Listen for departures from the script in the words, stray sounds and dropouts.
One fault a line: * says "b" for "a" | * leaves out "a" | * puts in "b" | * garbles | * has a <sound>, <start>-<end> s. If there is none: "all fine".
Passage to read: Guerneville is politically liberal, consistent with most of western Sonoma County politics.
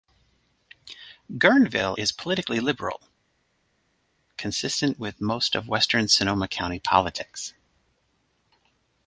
all fine